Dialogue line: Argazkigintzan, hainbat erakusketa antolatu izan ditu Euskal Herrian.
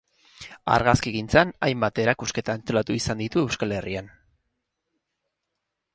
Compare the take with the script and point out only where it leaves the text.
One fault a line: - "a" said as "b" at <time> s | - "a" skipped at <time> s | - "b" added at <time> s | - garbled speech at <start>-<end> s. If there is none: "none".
none